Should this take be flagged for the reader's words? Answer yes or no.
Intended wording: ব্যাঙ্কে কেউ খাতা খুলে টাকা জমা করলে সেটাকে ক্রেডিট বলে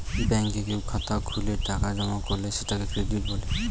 no